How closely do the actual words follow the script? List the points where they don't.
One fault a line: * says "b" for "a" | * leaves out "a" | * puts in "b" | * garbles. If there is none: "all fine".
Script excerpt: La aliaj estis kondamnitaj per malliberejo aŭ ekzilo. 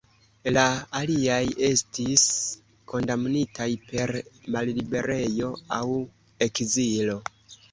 all fine